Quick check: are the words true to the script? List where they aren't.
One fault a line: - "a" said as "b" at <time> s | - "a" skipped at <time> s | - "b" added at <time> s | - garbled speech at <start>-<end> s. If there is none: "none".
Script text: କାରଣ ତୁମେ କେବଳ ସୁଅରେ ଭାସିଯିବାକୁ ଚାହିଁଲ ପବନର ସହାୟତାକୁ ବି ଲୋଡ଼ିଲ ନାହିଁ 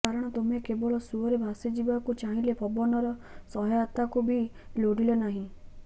none